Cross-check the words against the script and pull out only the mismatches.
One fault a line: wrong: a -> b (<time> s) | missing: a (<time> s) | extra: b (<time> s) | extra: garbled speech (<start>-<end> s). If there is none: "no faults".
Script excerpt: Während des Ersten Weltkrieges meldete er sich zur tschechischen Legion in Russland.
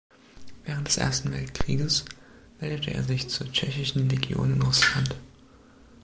no faults